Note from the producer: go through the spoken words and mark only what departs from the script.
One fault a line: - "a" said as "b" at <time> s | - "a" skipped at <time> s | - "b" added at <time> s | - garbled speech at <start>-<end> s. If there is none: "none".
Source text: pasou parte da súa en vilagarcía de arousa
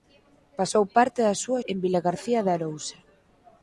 none